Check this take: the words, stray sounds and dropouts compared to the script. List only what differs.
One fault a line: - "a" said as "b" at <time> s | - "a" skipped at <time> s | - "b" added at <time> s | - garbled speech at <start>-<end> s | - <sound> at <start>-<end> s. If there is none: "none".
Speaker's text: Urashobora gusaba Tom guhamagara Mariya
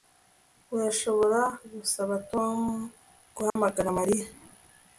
- dropout at 3.5-3.6 s